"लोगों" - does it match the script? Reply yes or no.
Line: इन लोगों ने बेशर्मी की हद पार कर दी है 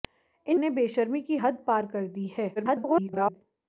no